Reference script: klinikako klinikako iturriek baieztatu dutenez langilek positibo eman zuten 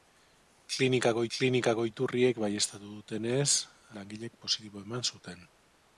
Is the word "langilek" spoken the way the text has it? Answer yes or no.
yes